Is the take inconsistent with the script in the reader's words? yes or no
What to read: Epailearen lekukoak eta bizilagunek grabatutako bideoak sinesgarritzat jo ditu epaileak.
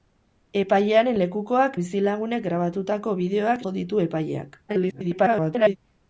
yes